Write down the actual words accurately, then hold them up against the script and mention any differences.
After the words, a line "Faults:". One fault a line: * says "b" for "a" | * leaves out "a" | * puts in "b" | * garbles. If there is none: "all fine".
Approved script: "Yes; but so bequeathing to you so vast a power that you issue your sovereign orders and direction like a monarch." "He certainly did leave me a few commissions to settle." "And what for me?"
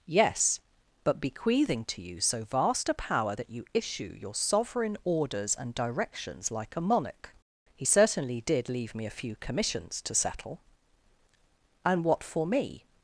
"Yes; but bequeathing to you so vast a power that you issue your sovereign orders and directions like a monarch." "He certainly did leave me a few commissions to settle." "And what for me?"
Faults:
* leaves out "so"
* says "directions" for "direction"